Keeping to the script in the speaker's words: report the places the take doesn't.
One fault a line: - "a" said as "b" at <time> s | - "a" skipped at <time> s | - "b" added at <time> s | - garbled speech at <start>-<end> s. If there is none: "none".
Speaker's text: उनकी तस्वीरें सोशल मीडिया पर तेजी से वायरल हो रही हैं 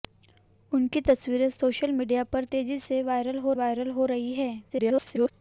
- "वायरल हो" added at 3.5 s
- garbled speech at 4.7-5.3 s